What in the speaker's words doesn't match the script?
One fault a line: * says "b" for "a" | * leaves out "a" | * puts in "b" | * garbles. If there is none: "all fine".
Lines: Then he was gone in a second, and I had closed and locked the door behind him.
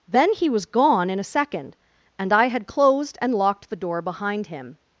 all fine